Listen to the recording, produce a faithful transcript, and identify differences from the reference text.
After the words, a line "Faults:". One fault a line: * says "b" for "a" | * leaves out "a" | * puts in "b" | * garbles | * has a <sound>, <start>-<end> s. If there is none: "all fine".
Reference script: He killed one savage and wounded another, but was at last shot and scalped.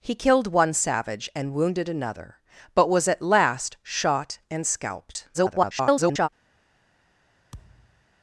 He killed one savage and wounded another, but was at last shot and scalped. [garbled]
Faults:
* garbles
* has a thud, 7.5-8.0 s